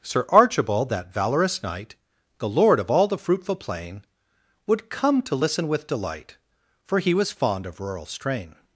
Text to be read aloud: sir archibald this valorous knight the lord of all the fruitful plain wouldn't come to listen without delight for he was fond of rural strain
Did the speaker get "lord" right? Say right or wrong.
right